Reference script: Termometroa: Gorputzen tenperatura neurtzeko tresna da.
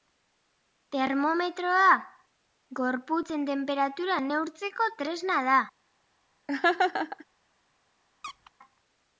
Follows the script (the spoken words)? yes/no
yes